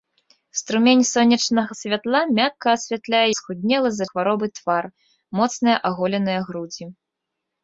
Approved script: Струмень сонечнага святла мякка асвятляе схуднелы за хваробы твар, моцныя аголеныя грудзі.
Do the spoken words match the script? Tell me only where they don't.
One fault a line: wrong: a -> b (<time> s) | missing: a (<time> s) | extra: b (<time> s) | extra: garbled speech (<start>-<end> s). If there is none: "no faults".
no faults